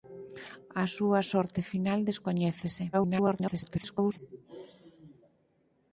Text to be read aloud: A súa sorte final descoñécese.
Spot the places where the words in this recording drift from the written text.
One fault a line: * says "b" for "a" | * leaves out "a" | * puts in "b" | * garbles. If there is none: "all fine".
* garbles